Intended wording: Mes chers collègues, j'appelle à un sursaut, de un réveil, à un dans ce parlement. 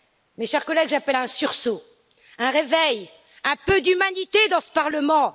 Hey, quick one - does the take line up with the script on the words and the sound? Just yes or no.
no